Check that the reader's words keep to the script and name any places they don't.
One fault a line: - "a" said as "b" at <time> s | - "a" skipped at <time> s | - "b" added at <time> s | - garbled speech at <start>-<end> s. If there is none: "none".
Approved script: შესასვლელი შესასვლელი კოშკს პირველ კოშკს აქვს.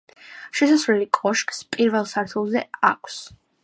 - "შესასვლელი" skipped at 1.1 s
- "კოშკს" said as "სართულზე" at 2.2 s